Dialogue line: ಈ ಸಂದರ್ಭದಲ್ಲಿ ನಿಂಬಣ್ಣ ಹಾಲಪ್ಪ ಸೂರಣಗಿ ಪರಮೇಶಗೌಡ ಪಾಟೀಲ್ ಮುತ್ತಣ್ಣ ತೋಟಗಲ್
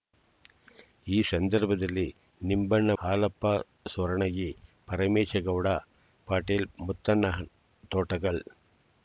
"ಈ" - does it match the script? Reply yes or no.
yes